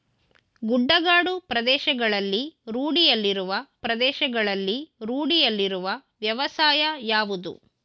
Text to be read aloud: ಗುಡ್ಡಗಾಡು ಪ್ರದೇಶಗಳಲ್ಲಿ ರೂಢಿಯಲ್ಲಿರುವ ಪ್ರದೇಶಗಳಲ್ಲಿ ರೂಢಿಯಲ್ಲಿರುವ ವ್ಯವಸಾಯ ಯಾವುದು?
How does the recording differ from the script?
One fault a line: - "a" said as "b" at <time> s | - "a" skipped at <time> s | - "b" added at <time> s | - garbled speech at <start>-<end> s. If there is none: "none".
none